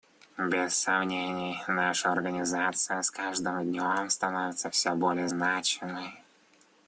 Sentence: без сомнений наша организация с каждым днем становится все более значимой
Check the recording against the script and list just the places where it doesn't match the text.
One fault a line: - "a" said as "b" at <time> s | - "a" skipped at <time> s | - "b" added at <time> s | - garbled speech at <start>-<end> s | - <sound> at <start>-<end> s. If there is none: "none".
none